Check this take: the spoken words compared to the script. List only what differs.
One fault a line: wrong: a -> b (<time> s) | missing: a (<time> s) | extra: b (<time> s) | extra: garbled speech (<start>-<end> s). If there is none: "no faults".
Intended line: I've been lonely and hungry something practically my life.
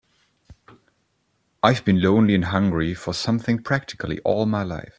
extra: for (2.9 s)
extra: all (4.2 s)